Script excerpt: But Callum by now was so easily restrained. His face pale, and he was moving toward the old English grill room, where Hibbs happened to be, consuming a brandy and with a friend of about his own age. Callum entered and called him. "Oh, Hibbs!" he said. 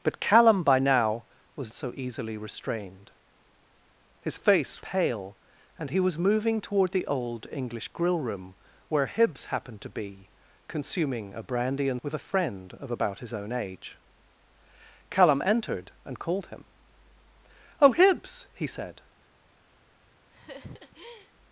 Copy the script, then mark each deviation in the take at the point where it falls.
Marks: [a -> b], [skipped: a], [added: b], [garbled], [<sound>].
But Callum by now was so easily restrained. His face pale, and he was moving toward the old English grill room, where Hibbs happened to be, consuming a brandy and with a friend of about his own age. Callum entered and called him. "Oh, Hibbs!" he said. [laugh]